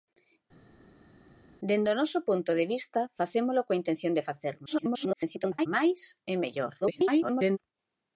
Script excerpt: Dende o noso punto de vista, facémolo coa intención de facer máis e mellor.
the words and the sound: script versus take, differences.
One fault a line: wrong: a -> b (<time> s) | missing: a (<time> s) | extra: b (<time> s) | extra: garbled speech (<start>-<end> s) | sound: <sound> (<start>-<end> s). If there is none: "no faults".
extra: garbled speech (4.7-5.7 s)
extra: garbled speech (6.8-7.6 s)